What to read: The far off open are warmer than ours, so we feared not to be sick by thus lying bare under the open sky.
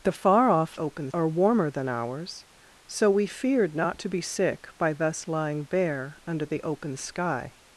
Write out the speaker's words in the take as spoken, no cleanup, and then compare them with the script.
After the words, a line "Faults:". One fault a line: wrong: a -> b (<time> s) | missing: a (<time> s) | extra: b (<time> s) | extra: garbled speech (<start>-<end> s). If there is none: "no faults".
The far off open are warmer than ours, so we feared not to be sick by thus lying bare under the open sky.
Faults:
no faults